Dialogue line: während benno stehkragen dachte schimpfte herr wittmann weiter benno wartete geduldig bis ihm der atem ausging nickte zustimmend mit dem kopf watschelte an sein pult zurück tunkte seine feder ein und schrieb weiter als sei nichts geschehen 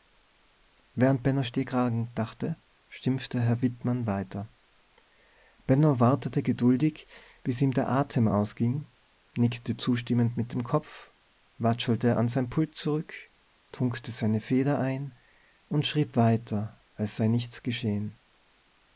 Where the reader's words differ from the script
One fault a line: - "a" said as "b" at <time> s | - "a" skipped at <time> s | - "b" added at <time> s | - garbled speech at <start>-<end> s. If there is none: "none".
none